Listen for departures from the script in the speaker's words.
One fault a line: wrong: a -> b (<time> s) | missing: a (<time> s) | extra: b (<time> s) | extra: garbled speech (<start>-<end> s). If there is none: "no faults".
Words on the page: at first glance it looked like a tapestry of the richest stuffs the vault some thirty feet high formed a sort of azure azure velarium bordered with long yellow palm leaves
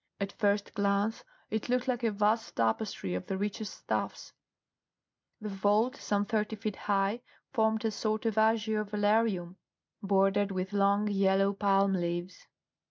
extra: vast (2.1 s)
missing: azure (8.8 s)